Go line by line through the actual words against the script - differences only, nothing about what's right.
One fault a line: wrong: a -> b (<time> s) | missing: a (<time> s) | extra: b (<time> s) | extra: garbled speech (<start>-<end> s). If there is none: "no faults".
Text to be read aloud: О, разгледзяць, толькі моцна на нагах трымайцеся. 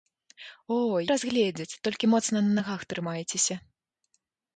no faults